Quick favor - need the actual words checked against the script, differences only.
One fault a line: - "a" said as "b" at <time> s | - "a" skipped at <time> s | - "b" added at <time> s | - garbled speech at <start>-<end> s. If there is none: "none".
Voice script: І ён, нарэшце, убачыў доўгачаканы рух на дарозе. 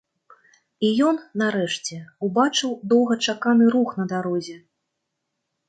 none